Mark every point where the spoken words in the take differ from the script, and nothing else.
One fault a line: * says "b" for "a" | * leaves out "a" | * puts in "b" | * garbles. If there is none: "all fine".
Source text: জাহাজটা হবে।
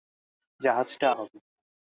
all fine